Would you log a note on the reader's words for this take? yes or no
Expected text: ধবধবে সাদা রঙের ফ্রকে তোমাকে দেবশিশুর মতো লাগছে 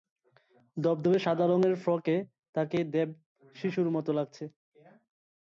yes